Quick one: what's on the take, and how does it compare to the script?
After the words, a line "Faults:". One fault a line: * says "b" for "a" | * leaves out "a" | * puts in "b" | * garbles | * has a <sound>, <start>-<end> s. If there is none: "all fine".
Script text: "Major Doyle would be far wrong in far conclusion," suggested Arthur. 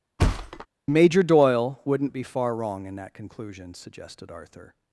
"Major Doyle wouldn't be far wrong in that conclusion," suggested Arthur.
Faults:
* has a thud, 0.2-0.7 s
* says "wouldn't" for "would"
* says "that" for "far"